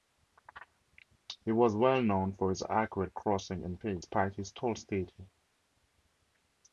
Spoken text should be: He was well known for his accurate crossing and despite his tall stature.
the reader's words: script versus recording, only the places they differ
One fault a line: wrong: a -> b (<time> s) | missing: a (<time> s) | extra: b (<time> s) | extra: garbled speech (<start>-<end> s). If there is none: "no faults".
extra: pace (3.7 s)